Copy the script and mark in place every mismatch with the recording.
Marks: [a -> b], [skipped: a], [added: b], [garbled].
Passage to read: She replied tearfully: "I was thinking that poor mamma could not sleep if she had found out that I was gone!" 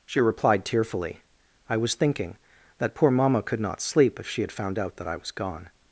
She replied tearfully: "I was thinking that poor mamma could not sleep if she had found out that I was gone!"